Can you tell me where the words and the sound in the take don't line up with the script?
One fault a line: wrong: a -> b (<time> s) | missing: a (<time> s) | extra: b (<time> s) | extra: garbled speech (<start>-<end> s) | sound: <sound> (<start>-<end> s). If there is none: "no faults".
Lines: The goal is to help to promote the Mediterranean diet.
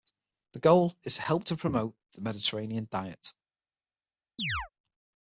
sound: chirp (4.4-4.7 s)